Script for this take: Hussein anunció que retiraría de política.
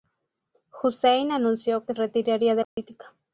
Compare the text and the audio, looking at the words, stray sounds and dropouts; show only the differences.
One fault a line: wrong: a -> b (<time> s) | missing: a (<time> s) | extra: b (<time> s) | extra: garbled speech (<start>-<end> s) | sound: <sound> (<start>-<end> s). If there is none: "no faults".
sound: dropout (2.6-2.8 s)